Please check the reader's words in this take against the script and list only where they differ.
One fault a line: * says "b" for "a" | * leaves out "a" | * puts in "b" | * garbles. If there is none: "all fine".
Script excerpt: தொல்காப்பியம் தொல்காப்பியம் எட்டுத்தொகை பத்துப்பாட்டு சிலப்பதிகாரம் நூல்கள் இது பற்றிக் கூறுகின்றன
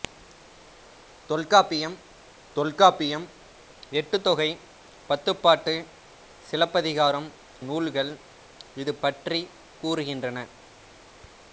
all fine